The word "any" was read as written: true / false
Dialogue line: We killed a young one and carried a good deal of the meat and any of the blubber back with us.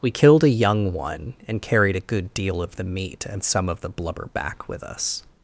false